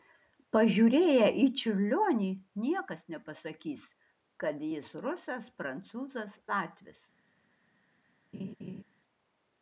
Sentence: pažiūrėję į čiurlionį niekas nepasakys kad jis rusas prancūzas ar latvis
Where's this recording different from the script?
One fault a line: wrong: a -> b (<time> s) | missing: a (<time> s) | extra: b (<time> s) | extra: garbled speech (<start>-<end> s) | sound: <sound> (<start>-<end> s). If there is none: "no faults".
missing: ar (6.4 s)
sound: laugh (8.3-8.8 s)